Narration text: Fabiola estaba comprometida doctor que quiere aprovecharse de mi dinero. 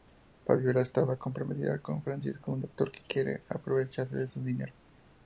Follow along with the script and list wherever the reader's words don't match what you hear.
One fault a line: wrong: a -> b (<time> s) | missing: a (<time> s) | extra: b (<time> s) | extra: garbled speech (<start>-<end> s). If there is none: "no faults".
extra: con Francisco un (1.8 s)
wrong: mi -> su (4.3 s)